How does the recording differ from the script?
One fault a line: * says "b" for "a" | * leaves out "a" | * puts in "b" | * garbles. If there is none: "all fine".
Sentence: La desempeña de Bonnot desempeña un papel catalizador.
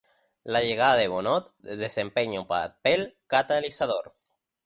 * says "llegada" for "desempeña"